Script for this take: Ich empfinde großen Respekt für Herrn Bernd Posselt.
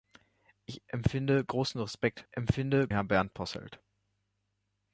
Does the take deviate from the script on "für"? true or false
true